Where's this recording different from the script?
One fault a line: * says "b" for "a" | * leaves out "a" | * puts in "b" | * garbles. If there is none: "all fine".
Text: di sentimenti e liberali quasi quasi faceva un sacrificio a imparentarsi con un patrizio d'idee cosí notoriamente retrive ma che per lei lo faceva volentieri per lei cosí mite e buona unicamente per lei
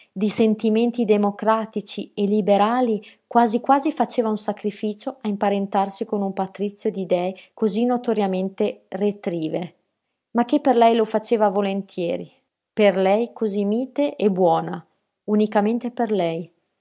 * puts in "democratici"